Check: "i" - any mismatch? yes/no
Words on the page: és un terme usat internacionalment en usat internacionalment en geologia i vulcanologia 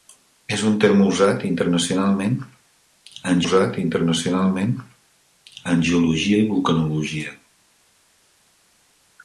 no